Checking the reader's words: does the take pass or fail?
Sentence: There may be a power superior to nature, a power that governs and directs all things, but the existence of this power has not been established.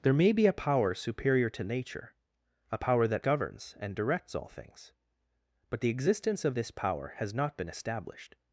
pass